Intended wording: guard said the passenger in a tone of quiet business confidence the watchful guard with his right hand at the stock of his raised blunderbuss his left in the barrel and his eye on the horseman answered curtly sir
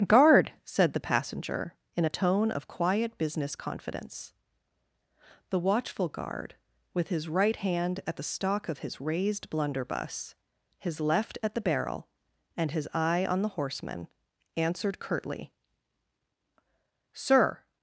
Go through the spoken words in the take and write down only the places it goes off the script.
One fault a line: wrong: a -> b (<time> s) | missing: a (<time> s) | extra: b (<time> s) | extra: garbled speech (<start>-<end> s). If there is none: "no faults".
wrong: in -> at (11.4 s)